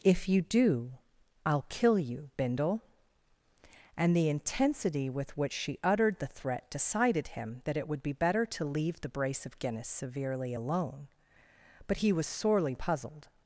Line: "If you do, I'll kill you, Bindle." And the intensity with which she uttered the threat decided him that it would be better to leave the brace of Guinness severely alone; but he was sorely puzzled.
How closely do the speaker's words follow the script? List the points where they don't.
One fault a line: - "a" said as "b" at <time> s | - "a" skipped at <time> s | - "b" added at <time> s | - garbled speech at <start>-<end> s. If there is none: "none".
none